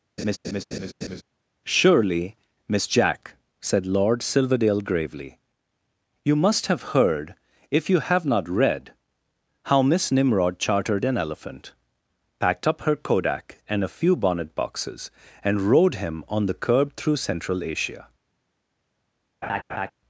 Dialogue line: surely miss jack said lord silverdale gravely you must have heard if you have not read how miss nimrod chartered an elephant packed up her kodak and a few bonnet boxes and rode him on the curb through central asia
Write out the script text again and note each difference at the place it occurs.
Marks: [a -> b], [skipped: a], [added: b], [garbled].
surely miss jack said lord silverdale gravely you must have heard if you have not read how miss nimrod chartered an elephant packed up her kodak and a few bonnet boxes and rode him on the curb through central asia